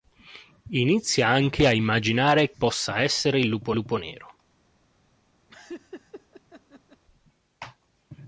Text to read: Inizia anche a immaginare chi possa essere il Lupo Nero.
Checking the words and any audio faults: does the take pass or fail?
fail